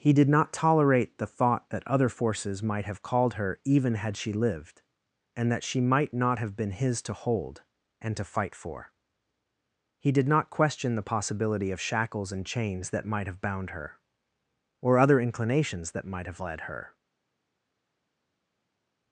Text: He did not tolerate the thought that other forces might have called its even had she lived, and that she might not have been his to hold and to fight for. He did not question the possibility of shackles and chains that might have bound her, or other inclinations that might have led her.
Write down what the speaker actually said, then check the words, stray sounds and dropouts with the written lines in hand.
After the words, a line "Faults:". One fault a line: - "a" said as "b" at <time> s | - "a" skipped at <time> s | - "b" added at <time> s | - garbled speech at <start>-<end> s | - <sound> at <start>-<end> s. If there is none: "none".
He did not tolerate the thought that other forces might have called her even had she lived, and that she might not have been his to hold and to fight for. He did not question the possibility of shackles and chains that might have bound her, or other inclinations that might have led her.
Faults:
- "its" said as "her" at 3.4 s